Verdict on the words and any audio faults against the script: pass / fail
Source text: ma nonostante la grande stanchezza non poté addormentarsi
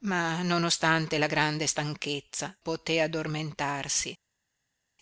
fail